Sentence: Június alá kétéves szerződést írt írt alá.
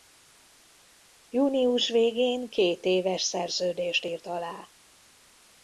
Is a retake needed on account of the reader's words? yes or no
yes